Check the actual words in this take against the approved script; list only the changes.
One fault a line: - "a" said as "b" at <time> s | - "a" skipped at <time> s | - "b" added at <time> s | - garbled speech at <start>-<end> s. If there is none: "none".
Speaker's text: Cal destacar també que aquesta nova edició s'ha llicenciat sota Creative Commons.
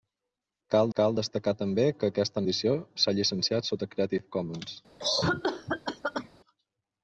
- "cal" added at 1.0 s
- "nova" skipped at 2.4 s